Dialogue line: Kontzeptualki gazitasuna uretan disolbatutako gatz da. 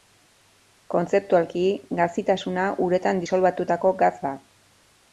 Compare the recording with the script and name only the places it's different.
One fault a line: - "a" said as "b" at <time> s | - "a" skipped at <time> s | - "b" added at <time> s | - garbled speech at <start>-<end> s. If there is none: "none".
none